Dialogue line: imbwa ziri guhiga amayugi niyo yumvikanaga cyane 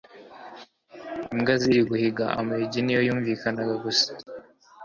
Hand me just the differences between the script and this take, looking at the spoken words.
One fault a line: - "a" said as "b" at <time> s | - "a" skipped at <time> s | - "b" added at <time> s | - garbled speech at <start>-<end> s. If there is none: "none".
- "cyane" said as "gusa" at 3.8 s